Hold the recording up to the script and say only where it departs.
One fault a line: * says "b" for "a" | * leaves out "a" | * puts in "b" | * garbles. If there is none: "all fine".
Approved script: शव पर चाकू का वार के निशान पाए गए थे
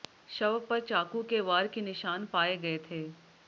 * says "के" for "का"